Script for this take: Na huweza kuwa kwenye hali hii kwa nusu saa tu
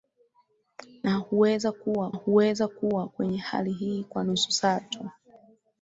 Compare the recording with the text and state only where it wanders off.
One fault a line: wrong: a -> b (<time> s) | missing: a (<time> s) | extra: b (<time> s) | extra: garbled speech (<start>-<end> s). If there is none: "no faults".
extra: huweza kuwa (2.1 s)